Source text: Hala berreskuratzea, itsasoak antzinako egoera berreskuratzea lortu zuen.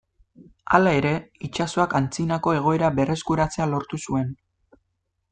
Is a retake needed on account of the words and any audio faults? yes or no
yes